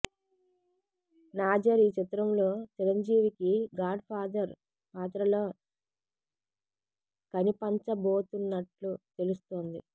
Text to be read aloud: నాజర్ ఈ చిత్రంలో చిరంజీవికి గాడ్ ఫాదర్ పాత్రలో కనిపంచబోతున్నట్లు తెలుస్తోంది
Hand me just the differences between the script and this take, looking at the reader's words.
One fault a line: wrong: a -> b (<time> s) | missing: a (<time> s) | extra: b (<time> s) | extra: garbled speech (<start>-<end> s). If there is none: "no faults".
no faults